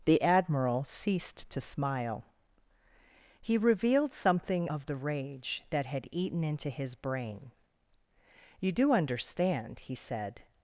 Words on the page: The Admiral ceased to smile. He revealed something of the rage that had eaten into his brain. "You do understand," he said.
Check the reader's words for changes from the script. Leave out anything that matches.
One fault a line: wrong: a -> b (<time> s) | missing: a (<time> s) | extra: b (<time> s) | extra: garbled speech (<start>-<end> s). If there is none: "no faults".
no faults